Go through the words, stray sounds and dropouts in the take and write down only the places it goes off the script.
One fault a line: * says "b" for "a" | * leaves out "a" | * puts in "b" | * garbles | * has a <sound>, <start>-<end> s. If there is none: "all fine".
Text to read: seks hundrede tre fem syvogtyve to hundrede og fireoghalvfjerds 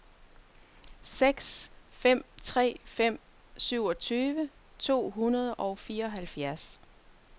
* says "fem" for "hundrede"